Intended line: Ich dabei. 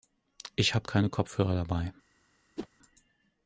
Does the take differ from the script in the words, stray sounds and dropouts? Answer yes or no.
yes